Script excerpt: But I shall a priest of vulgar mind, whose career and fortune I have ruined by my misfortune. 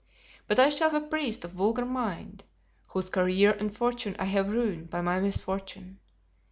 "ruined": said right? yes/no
yes